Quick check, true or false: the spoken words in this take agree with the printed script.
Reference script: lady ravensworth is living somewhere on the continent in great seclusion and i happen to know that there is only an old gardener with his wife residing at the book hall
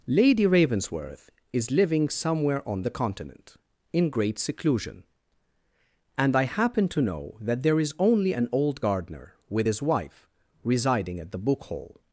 true